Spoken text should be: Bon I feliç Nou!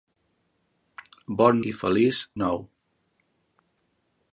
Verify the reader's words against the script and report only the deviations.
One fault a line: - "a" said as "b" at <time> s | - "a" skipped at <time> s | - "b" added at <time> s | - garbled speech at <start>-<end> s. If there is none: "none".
none